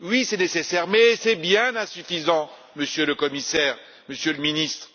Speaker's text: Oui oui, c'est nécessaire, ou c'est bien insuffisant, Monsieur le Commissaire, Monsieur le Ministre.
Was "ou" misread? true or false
true